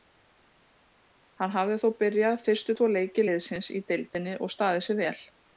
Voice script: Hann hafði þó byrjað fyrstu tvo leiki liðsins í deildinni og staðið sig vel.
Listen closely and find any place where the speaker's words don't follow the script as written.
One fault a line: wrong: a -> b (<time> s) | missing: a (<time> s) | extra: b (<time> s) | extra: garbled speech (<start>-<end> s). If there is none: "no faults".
no faults